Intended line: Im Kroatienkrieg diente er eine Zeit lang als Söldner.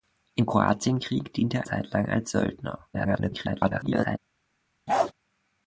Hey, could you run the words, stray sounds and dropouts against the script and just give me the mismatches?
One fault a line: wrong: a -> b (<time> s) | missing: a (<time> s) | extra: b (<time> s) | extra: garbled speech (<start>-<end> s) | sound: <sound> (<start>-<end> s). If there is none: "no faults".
missing: eine (1.7 s)
extra: garbled speech (2.9-4.2 s)
sound: bark (4.9-5.1 s)